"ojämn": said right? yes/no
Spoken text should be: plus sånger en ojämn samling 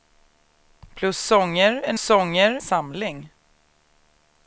no